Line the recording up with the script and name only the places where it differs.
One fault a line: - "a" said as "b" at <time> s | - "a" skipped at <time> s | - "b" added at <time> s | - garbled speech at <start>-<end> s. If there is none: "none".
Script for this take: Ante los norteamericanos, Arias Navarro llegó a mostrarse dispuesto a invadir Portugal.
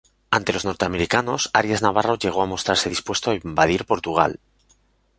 none